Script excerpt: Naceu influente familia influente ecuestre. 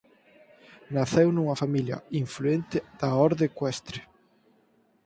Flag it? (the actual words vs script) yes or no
yes